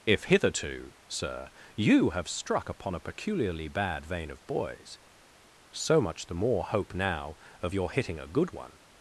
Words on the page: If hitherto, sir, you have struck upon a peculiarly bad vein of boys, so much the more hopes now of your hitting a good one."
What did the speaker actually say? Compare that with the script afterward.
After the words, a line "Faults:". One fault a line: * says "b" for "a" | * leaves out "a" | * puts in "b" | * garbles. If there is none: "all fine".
If hitherto, sir, you have struck upon a peculiarly bad vein of boys, so much the more hope now of your hitting a good one."
Faults:
* says "hope" for "hopes"